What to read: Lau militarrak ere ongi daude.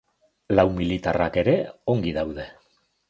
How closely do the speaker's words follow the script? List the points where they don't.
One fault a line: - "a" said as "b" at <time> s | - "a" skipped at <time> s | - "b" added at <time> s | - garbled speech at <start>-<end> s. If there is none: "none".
none